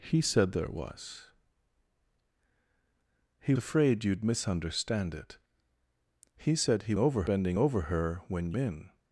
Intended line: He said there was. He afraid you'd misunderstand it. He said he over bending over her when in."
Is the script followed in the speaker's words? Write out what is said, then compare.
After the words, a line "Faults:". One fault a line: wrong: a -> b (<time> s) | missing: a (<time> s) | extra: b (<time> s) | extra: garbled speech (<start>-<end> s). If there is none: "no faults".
He said there was. He afraid you'd misunderstand it. He said he over bending over her when in."
Faults:
no faults